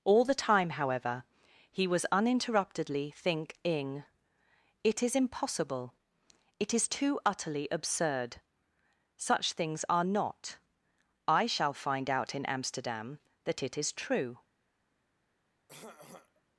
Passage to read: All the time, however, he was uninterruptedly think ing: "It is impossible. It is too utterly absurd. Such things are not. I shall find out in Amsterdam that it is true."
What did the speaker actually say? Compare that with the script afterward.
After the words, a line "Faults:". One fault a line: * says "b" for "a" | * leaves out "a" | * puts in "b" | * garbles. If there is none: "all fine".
All the time, however, he was uninterruptedly think ing: "It is impossible. It is too utterly absurd. Such things are not. I shall find out in Amsterdam that it is true."
Faults:
all fine